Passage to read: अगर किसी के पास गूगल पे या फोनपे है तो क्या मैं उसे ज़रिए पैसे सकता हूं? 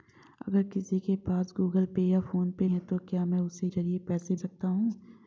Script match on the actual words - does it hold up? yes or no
yes